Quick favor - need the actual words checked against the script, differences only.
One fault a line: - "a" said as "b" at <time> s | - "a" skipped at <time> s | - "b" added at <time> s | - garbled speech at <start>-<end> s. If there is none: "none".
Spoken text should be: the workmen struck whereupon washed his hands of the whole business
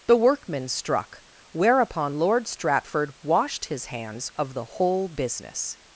- "lord stratford" added at 2.1 s